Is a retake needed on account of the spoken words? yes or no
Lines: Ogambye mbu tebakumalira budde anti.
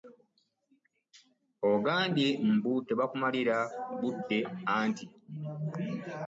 no